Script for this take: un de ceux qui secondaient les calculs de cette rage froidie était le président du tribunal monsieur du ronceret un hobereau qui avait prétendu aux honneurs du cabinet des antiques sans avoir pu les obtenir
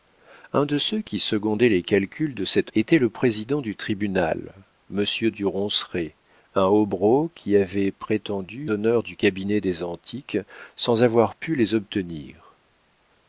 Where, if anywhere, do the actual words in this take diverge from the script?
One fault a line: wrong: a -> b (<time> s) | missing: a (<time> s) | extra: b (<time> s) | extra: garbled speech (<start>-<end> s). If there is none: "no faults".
missing: rage froidie (2.7 s)
missing: aux (8.7 s)